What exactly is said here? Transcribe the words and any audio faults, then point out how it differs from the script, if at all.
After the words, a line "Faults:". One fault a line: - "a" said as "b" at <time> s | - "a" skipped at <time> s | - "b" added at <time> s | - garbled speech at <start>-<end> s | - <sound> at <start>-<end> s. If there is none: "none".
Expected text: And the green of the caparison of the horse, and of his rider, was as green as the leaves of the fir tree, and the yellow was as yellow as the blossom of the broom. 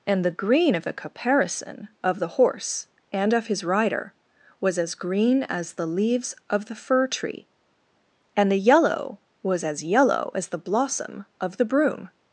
And the green of the caparison of the horse, and of his rider, was as green as the leaves of the fir tree, and the yellow was as yellow as the blossom of the broom.
Faults:
none